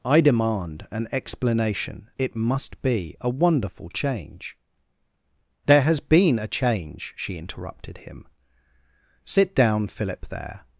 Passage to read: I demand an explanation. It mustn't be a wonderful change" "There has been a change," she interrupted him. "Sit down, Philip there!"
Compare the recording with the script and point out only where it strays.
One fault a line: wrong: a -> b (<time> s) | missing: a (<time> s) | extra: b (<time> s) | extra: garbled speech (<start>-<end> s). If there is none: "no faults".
wrong: mustn't -> must (2.4 s)